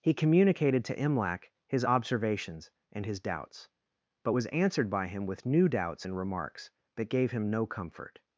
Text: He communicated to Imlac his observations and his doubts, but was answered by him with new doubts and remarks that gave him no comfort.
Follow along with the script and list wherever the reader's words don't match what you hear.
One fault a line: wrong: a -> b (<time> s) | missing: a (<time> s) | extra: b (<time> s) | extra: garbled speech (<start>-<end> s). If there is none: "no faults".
no faults